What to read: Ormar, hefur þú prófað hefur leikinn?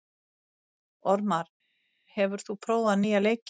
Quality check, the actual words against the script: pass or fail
fail